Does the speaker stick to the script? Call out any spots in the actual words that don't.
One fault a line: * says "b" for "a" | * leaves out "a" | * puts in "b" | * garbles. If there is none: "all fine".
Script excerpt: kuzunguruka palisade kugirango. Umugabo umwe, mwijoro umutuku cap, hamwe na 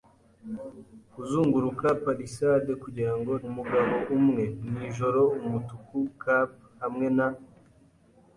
all fine